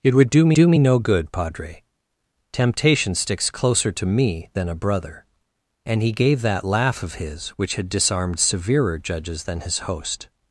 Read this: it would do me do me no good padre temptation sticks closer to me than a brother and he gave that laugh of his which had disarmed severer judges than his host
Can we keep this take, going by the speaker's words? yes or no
yes